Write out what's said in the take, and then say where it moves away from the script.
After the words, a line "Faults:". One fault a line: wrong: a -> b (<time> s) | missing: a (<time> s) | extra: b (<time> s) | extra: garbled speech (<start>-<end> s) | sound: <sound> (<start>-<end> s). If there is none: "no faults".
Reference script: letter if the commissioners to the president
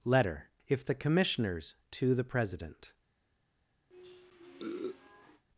letter if the commissioners to the president
Faults:
sound: sniff (3.9-5.4 s)